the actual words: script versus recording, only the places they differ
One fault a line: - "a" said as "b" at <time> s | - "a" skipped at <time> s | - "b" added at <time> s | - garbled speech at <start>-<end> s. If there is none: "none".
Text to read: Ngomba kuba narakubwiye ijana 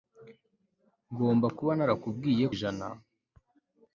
none